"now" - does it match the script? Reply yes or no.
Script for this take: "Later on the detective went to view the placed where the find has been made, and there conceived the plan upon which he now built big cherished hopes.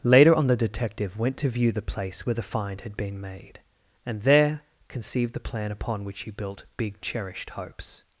no